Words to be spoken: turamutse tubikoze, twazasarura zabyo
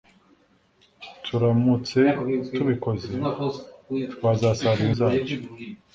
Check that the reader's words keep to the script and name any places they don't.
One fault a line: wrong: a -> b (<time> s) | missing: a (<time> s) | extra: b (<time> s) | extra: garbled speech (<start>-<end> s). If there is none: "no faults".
no faults